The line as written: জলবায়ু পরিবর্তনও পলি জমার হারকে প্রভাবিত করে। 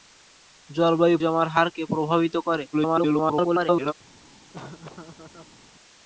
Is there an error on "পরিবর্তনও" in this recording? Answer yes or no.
yes